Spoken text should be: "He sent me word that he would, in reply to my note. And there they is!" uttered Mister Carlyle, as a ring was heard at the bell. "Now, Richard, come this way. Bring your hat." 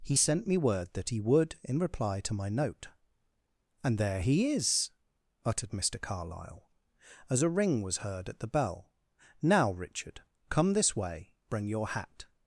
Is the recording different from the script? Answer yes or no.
yes